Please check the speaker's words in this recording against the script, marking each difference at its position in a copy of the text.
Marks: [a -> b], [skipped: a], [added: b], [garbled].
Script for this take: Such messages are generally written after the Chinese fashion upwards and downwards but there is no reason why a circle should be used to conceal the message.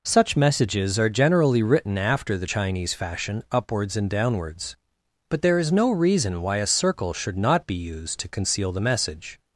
Such messages are generally written after the Chinese fashion upwards and downwards but there is no reason why a circle should [added: not] be used to conceal the message.